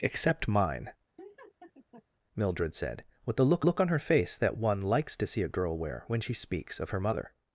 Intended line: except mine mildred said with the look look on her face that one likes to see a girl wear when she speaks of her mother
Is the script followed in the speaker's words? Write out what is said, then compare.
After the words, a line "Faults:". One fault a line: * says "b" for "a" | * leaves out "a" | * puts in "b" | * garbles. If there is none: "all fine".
except mine mildred said with the look look on her face that one likes to see a girl wear when she speaks of her mother
Faults:
all fine